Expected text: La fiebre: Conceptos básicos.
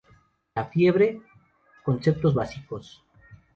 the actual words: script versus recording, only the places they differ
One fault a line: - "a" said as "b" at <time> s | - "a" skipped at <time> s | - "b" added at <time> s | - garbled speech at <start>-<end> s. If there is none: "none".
none